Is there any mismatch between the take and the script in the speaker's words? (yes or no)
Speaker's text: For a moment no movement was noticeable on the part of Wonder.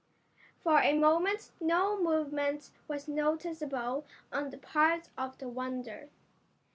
yes